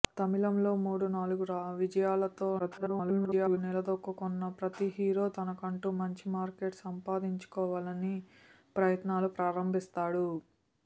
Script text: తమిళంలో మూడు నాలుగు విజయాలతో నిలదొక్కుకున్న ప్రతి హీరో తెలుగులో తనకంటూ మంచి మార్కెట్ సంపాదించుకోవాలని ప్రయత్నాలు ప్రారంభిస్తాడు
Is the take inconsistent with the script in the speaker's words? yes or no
yes